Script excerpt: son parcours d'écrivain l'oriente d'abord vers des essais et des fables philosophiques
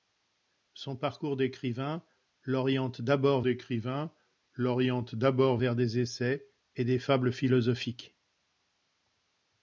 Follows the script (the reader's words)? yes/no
no